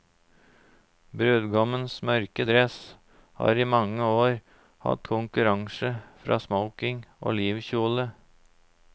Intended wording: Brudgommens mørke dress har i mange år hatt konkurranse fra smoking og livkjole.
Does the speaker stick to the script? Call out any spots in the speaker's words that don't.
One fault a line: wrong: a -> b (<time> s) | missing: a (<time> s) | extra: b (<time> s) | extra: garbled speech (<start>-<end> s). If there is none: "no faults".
no faults